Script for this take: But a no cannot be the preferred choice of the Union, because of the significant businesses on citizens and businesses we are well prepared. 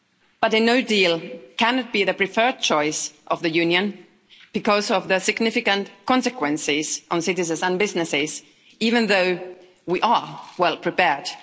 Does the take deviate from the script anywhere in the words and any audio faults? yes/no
yes